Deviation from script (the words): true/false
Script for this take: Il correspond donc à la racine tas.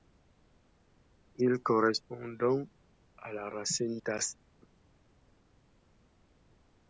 false